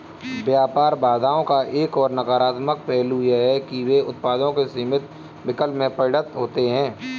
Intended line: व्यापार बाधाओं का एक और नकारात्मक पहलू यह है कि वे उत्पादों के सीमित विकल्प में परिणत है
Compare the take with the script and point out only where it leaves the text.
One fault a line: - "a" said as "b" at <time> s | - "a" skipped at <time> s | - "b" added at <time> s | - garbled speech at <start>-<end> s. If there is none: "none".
- "होते" added at 6.4 s